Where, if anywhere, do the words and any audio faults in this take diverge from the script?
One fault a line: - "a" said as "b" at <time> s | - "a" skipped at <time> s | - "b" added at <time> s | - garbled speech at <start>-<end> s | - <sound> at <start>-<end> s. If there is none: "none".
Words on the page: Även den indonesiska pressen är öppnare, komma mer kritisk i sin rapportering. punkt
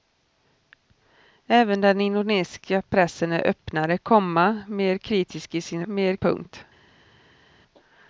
- "rapportering" said as "mer" at 5.9 s